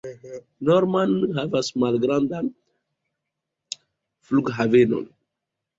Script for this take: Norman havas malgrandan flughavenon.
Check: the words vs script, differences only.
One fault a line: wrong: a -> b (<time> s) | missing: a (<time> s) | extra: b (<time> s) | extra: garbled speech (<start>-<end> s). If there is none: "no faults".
no faults